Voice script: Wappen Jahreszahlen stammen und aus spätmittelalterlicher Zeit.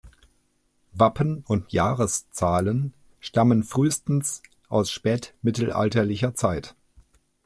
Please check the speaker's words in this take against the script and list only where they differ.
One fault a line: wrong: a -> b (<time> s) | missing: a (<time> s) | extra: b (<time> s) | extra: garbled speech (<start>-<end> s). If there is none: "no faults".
extra: und (1.4 s)
wrong: und -> frühestens (3.6 s)